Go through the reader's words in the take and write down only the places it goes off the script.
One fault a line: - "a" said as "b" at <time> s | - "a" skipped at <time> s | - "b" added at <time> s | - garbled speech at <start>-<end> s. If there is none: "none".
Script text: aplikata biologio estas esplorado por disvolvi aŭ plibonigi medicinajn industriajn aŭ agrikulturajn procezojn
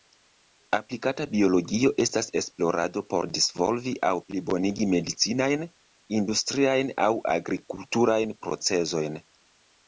none